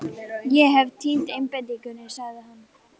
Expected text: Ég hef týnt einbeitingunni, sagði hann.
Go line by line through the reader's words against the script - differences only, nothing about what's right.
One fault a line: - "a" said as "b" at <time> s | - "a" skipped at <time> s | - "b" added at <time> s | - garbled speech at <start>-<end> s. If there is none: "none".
none